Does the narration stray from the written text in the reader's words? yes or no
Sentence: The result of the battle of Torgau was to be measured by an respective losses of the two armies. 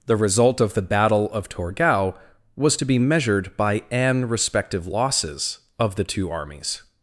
no